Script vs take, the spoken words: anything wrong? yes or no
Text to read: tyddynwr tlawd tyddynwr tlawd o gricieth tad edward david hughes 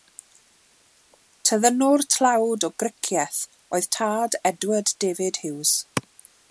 yes